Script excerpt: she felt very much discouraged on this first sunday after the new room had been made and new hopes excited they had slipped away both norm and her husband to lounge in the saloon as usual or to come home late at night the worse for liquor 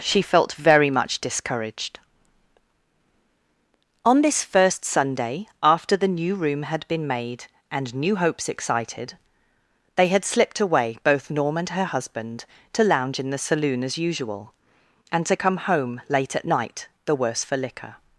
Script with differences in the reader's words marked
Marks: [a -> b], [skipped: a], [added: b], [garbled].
she felt very much discouraged on this first sunday after the new room had been made and new hopes excited they had slipped away both norm and her husband to lounge in the saloon as usual [or -> and] to come home late at night the worse for liquor